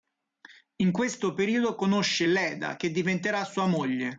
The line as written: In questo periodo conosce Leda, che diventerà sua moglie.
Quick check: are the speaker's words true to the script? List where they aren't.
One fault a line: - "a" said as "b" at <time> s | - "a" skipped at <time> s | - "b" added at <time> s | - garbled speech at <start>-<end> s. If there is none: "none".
none